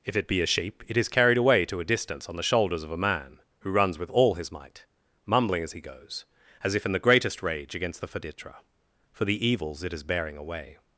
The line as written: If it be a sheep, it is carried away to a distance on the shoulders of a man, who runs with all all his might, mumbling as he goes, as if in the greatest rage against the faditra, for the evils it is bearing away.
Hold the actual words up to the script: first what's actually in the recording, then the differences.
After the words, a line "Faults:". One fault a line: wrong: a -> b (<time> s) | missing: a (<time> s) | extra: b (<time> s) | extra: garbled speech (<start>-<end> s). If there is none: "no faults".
If it be a sheep, it is carried away to a distance on the shoulders of a man, who runs with all his might, mumbling as he goes, as if in the greatest rage against the faditra, for the evils it is bearing away.
Faults:
missing: all (4.3 s)